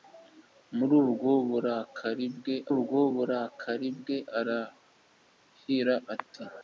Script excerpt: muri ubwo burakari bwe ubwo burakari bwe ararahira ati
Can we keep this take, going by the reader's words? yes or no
yes